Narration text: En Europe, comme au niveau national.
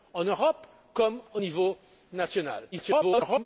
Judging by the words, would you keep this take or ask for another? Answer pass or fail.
fail